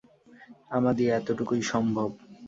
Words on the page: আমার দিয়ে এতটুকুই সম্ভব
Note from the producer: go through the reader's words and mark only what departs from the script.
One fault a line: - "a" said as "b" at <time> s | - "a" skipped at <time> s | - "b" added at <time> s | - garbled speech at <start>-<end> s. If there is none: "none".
none